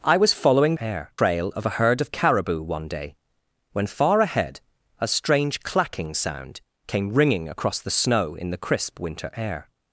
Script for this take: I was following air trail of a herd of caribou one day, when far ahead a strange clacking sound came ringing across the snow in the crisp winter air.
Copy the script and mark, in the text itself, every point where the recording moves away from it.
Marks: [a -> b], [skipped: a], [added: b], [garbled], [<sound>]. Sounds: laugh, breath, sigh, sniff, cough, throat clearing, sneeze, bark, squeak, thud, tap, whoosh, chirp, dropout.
I was following air trail of a herd of caribou one day, when far ahead a strange clacking sound came ringing across the snow in the crisp winter air.